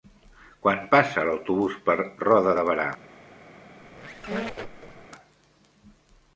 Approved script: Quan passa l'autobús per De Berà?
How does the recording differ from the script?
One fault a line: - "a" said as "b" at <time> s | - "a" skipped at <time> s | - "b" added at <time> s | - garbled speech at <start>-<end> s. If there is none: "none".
- "Roda" added at 2.2 s